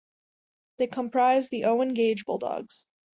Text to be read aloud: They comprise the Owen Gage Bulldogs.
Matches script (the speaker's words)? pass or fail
pass